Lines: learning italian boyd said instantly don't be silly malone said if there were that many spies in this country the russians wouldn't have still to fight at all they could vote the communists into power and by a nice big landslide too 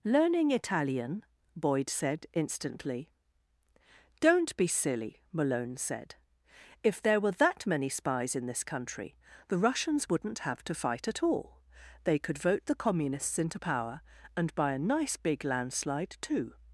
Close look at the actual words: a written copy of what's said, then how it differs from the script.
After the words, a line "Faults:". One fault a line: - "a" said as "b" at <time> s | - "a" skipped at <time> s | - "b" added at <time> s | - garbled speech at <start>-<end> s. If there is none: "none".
learning italian boyd said instantly don't be silly malone said if there were that many spies in this country the russians wouldn't have to fight at all they could vote the communists into power and by a nice big landslide too
Faults:
- "still" skipped at 10.6 s